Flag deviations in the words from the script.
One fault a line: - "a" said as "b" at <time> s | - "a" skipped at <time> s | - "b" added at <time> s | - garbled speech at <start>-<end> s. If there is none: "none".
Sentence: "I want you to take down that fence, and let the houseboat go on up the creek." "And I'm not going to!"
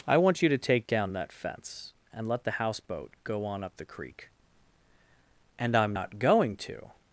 none